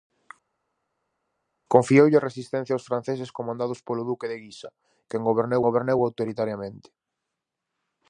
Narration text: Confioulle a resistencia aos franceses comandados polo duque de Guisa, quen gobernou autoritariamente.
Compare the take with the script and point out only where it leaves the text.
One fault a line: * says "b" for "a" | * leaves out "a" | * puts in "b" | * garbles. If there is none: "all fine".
* puts in "gobernou"